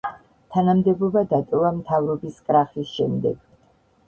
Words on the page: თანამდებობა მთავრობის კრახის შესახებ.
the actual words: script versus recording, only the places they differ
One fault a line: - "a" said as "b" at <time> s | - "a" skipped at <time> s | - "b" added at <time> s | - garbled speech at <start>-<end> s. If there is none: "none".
- "დატოვა" added at 1.3 s
- "შესახებ" said as "შემდეგ" at 3.0 s